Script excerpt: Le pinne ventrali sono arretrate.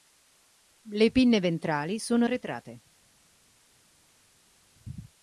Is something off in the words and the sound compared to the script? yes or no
no